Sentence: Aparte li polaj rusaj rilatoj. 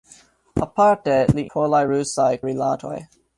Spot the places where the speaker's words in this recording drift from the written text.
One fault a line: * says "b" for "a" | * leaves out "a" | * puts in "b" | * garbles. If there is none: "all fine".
all fine